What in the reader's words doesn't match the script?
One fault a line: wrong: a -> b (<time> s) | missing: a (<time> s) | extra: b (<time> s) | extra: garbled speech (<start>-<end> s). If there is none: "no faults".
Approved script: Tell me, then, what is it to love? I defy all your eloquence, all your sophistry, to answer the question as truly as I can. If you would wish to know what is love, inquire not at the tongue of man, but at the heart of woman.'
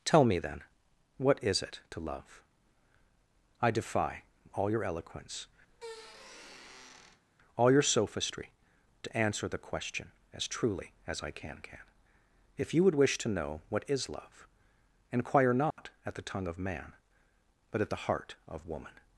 extra: can (11.6 s)